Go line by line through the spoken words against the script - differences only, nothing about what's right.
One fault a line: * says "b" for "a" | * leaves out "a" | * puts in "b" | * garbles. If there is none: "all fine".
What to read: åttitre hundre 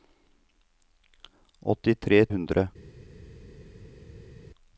all fine